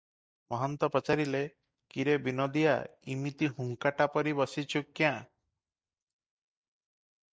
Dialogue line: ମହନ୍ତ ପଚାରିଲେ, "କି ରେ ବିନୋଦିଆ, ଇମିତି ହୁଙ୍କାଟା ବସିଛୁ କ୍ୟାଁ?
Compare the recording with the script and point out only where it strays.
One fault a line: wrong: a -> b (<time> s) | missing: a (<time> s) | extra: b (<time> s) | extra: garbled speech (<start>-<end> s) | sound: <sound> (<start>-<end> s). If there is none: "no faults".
extra: ପରି (4.1 s)